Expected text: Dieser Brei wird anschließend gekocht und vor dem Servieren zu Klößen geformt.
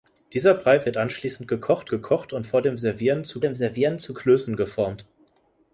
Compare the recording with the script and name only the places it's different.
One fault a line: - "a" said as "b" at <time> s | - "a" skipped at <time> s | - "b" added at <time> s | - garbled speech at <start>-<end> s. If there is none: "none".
- "gekocht" added at 1.9 s
- "dem Servieren zu" added at 3.4 s